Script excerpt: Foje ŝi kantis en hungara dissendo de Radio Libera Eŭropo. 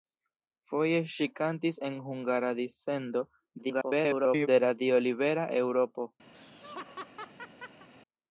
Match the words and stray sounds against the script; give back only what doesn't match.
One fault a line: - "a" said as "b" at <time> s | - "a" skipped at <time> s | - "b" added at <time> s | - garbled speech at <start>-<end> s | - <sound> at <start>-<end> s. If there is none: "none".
- garbled speech at 3.6-4.5 s
- laugh at 6.3-7.9 s